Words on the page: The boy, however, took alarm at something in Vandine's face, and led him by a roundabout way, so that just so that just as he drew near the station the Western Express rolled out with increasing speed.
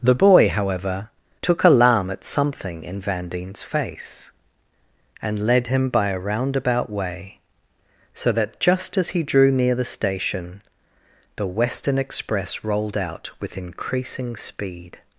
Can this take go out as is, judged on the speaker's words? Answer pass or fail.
fail